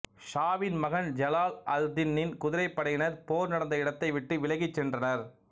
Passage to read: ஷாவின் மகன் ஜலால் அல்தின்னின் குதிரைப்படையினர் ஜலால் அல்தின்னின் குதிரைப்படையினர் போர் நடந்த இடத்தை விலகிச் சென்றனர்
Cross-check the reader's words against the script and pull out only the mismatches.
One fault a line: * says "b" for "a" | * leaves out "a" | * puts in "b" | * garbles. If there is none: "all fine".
* leaves out "ஜலால் அல்தின்னின் குதிரைப்படையினர்"
* puts in "விட்டு"